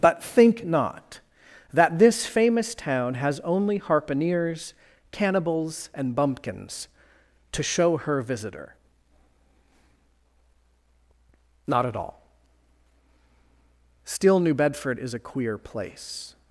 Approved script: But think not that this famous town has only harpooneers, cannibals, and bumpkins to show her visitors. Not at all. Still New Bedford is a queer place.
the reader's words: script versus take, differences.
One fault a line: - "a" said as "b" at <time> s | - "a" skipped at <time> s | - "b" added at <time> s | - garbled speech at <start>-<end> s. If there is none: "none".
- "visitors" said as "visitor" at 8.2 s